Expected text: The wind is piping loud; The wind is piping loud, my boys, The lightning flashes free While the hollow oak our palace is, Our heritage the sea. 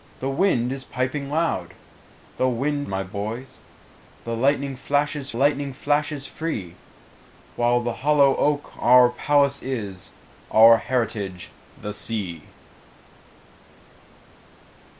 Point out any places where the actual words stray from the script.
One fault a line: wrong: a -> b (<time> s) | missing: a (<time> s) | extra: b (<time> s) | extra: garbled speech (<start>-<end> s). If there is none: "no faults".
missing: is piping loud (2.9 s)
extra: lightning flashes (5.3 s)